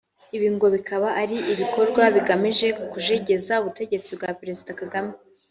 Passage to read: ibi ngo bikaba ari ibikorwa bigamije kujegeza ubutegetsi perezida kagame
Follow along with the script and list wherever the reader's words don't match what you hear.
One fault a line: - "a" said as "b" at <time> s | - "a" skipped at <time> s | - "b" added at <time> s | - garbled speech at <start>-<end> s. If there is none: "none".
- "bwa" added at 4.2 s